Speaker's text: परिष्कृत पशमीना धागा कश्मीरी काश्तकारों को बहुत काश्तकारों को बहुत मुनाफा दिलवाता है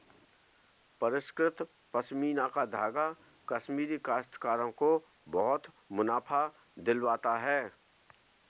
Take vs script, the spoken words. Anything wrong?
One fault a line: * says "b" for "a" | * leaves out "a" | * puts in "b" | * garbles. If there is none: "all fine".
* puts in "का"
* leaves out "काश्तकारों को बहुत"